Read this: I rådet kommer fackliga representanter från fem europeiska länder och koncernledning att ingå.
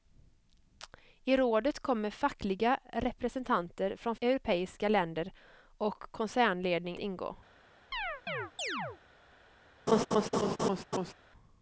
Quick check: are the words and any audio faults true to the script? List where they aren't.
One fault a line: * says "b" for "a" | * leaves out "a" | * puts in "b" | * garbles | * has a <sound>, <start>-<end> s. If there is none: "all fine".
* leaves out "fem"
* leaves out "att"
* has a chirp, 7.9-9.0 s
* has a laugh, 9.9-11.1 s